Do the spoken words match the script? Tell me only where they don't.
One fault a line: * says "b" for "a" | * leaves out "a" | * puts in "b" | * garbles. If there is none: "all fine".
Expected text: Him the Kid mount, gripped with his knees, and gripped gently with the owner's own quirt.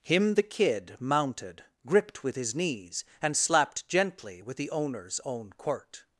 * says "mounted" for "mount"
* says "slapped" for "gripped"